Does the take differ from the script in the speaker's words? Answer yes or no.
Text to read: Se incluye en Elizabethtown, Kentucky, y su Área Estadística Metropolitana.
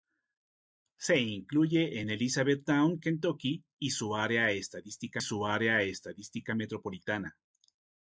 yes